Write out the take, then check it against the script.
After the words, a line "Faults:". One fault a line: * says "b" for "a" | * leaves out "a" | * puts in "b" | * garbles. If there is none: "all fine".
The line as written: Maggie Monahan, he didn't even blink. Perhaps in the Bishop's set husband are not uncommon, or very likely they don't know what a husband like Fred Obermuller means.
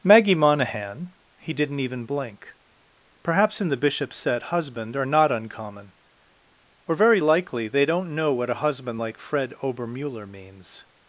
Maggie Monahan, he didn't even blink. Perhaps in the Bishop's set husband are not uncommon, or very likely they don't know what a husband like Fred Obermuller means.
Faults:
all fine